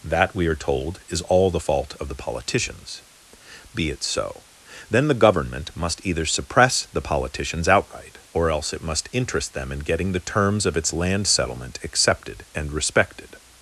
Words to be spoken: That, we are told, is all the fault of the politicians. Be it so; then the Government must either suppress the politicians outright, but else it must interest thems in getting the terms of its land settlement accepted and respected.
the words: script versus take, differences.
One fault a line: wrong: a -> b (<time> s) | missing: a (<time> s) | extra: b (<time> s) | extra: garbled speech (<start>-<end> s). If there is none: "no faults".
wrong: but -> or (8.3 s)
wrong: thems -> them (9.5 s)